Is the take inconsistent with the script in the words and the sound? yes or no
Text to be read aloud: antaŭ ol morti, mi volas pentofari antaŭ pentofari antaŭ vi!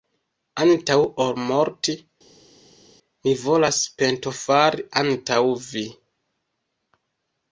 yes